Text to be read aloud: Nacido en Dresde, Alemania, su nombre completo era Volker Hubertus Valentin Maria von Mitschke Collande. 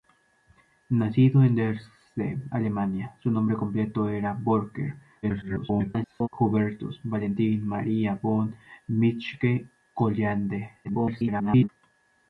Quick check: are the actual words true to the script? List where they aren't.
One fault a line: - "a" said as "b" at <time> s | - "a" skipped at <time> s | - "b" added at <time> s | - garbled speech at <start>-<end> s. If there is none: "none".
- garbled speech at 5.2-6.3 s
- garbled speech at 10.8-11.7 s